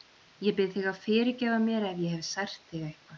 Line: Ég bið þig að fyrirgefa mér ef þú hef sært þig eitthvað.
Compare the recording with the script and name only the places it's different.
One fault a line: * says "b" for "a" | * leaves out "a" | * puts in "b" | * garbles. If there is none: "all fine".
* says "ég" for "þú"